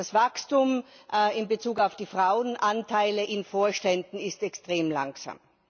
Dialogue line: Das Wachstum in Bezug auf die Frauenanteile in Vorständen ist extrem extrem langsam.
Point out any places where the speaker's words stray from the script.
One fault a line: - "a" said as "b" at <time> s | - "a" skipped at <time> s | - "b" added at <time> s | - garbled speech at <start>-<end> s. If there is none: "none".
- "extrem" skipped at 4.9 s